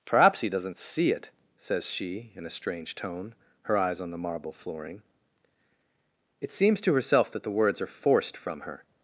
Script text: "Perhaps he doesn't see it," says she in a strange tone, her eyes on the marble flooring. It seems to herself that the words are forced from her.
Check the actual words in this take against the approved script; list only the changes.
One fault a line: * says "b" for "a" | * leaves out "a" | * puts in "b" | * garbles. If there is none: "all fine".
all fine